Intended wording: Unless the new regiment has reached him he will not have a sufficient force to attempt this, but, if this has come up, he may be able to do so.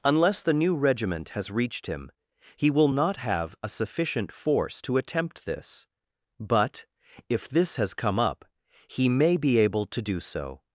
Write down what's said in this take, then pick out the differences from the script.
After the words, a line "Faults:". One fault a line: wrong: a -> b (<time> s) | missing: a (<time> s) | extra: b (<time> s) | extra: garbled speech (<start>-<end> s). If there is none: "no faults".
Unless the new regiment has reached him he will not have a sufficient force to attempt this, but, if this has come up, he may be able to do so.
Faults:
no faults